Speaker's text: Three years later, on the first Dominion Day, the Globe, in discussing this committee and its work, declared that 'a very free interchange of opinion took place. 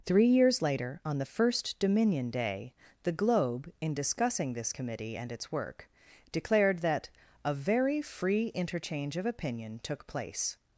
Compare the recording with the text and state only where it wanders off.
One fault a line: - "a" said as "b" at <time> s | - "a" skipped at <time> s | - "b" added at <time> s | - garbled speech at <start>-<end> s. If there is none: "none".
none